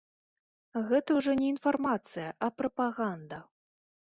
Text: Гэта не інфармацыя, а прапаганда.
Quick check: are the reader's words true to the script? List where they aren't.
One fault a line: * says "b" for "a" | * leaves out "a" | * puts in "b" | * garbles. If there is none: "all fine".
* puts in "ўжо"